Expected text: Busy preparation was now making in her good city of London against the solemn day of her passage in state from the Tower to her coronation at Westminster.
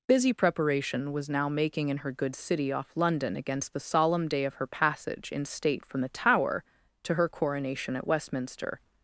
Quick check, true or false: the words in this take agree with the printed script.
false